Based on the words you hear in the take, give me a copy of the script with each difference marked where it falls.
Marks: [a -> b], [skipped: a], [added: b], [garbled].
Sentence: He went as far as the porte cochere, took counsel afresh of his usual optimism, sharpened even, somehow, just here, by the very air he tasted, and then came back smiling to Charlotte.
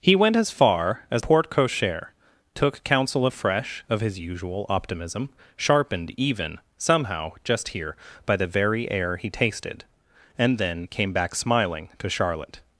He went as far as [skipped: the] porte cochere, took counsel afresh of his usual optimism, sharpened even, somehow, just here, by the very air he tasted, and then came back smiling to Charlotte.